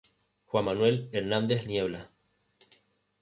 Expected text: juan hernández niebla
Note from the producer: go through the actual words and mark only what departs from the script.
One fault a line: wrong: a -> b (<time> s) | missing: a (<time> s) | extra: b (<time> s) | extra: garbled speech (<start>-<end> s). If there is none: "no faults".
extra: manuel (0.6 s)